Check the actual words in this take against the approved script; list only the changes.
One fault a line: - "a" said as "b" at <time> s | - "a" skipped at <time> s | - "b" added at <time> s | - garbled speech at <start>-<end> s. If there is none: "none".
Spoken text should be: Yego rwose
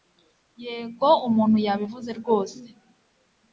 - "umuntu yabivuze" added at 1.3 s